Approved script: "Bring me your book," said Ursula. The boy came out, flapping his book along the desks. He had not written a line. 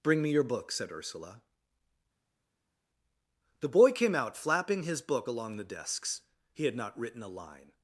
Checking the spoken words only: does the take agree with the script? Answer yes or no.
yes